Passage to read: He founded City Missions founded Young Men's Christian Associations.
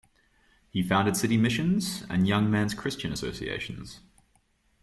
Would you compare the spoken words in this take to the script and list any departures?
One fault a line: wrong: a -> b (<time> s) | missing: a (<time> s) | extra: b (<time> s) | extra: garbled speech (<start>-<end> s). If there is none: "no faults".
wrong: founded -> and (2.1 s)